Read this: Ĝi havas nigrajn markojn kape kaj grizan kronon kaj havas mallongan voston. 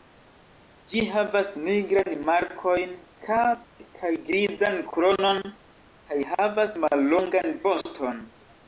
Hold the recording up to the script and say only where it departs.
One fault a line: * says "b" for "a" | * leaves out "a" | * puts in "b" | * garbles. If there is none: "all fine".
all fine